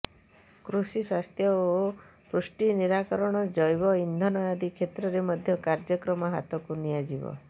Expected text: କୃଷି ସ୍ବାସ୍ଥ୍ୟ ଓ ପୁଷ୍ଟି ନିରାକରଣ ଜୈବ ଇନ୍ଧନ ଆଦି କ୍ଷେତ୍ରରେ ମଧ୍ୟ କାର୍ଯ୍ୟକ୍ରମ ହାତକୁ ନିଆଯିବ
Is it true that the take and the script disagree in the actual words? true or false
false